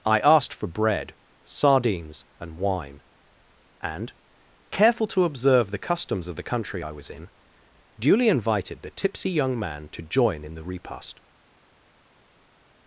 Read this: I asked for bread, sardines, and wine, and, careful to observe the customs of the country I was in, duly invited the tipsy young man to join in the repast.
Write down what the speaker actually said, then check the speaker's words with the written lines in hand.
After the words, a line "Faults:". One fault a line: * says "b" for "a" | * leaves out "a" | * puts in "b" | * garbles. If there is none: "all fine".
I asked for bread, sardines, and wine, and, careful to observe the customs of the country I was in, duly invited the tipsy young man to join in the repast.
Faults:
all fine